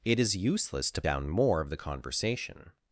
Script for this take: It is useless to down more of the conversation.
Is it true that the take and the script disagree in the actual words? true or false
false